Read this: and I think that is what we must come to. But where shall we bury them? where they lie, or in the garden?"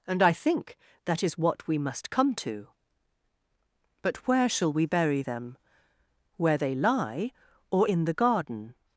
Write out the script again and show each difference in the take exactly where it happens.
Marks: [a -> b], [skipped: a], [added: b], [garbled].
and I think that is what we must come to. But where shall we bury them? where they lie, or in the garden?"